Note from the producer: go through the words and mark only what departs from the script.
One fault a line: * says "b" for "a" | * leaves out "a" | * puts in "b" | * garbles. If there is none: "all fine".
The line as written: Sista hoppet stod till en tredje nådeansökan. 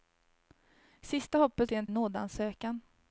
* leaves out "stod"
* leaves out "tredje"